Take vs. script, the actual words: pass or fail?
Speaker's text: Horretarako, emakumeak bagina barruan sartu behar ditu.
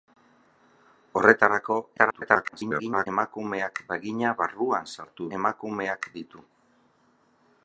fail